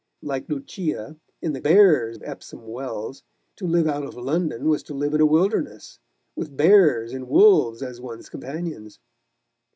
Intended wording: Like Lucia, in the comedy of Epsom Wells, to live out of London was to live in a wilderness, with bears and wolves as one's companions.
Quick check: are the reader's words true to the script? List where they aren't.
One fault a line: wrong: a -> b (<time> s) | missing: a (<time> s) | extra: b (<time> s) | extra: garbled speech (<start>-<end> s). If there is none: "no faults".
wrong: comedy -> bears (1.6 s)